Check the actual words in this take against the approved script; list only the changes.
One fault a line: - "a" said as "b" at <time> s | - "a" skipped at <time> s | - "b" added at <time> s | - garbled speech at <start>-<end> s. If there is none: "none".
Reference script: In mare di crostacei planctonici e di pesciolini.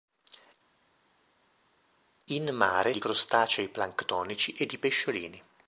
none